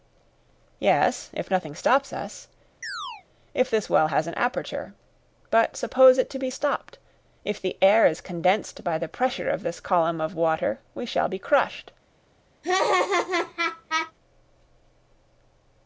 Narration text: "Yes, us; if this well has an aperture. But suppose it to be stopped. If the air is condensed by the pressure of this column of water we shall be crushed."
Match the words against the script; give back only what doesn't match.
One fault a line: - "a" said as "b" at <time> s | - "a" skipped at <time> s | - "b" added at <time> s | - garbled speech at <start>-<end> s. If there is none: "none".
- "if nothing stops" added at 1.3 s